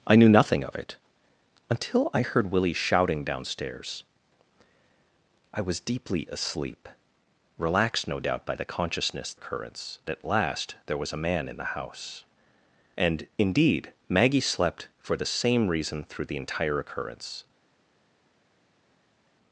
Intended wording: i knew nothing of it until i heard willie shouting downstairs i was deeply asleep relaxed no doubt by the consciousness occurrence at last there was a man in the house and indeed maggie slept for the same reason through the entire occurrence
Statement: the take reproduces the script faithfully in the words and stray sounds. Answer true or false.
true